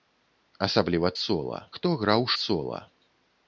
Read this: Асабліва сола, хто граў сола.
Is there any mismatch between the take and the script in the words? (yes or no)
no